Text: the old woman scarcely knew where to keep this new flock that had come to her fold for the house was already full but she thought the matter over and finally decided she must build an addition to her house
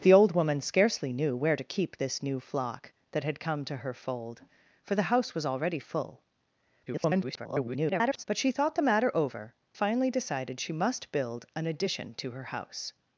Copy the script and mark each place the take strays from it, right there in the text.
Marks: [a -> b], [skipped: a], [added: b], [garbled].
the old woman scarcely knew where to keep this new flock that had come to her fold for the house was already full [garbled] but she thought the matter over [skipped: and] finally decided she must build an addition to her house